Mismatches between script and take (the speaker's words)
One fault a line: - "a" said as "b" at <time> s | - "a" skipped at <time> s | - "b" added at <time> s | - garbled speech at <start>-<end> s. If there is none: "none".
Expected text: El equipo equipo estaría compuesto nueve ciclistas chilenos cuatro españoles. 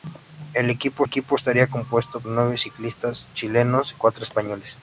none